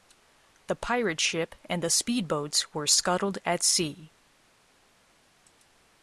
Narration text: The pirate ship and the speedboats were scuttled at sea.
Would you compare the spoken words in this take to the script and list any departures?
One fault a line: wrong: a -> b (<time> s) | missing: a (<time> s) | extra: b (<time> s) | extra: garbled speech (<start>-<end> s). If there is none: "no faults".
no faults